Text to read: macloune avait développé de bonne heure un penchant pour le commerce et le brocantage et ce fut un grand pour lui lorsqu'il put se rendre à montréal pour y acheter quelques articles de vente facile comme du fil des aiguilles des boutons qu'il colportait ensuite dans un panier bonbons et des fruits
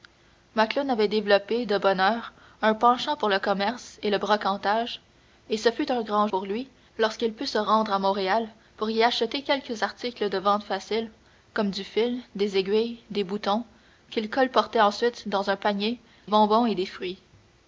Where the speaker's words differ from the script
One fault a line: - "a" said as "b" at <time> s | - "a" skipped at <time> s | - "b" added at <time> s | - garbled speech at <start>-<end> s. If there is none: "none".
none